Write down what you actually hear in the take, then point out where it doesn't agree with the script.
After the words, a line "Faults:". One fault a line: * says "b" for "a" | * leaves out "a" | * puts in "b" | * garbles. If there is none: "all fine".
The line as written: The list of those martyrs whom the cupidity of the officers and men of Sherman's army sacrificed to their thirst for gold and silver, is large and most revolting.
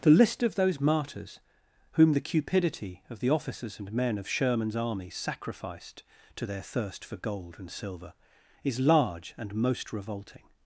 The list of those martyrs whom the cupidity of the officers and men of Sherman's army sacrificed to their thirst for gold and silver, is large and most revolting.
Faults:
all fine